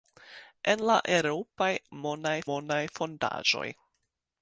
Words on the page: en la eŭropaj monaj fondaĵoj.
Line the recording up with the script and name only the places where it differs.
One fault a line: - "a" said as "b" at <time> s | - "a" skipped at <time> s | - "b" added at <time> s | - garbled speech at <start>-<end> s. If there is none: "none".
- "monaj" added at 2.5 s